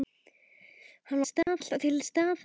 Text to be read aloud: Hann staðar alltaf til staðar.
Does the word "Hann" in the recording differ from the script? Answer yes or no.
no